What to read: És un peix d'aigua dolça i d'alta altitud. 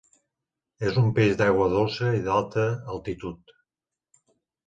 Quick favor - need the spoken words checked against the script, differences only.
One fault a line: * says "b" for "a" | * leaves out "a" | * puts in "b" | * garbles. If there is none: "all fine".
all fine